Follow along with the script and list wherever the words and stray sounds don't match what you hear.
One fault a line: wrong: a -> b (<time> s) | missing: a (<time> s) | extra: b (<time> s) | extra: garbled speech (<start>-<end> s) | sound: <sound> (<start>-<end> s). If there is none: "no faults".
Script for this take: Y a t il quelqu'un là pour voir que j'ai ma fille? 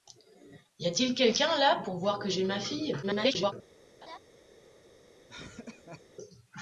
extra: garbled speech (3.0-3.5 s)
sound: laugh (4.0-4.2 s)
sound: laugh (5.3-6.0 s)